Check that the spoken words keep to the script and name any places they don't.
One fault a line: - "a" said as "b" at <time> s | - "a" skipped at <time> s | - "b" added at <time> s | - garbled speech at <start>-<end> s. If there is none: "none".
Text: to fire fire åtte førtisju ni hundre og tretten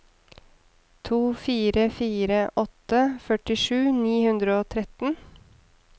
none